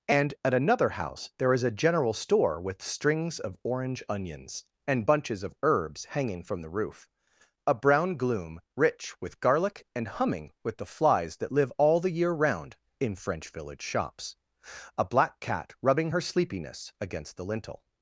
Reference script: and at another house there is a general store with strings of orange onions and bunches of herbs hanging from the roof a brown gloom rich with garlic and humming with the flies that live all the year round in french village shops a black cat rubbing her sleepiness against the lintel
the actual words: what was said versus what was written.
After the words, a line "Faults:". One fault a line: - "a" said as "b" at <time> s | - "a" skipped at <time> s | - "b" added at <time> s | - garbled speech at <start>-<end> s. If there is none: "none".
and at another house there is a general store with strings of orange onions and bunches of herbs hanging from the roof a brown gloom rich with garlic and humming with the flies that live all the year round in french village shops a black cat rubbing her sleepiness against the lintel
Faults:
none